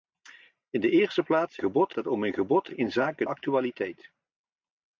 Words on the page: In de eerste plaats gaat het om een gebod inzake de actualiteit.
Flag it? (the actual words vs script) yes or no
yes